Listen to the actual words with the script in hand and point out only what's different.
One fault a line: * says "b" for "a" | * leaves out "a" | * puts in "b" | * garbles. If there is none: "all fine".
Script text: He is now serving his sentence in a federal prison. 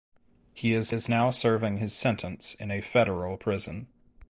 * puts in "is"